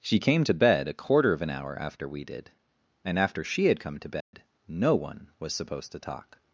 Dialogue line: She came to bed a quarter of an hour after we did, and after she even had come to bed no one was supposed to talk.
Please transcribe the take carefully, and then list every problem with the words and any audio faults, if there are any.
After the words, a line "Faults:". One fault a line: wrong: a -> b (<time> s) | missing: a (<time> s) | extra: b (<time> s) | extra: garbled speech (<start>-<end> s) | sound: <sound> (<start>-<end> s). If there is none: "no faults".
She came to bed a quarter of an hour after we did, and after she had come to bed no one was supposed to talk.
Faults:
missing: even (3.7 s)
sound: dropout (4.2-4.3 s)